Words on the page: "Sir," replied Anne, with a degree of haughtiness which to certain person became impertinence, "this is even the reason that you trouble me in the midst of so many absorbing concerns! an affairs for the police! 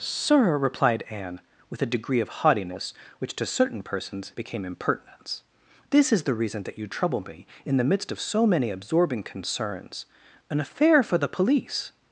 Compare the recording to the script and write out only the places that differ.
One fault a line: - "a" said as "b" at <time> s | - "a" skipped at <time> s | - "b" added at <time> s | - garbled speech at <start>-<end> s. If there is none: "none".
- "person" said as "persons" at 3.8 s
- "even" skipped at 6.2 s
- "affairs" said as "affair" at 10.6 s